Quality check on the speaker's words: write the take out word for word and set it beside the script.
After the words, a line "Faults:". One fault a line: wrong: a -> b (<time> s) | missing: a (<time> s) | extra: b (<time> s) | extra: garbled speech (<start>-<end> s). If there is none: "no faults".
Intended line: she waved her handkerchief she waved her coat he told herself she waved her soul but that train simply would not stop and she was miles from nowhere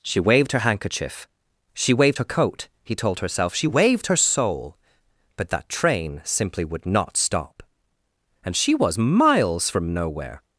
she waved her handkerchief she waved her coat he told herself she waved her soul but that train simply would not stop and she was miles from nowhere
Faults:
no faults